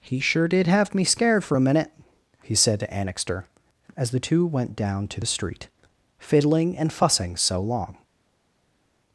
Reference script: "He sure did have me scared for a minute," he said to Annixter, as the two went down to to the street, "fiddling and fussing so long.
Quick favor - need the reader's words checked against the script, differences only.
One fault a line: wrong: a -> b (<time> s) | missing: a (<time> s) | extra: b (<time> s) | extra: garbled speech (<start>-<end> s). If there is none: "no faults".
missing: to (5.2 s)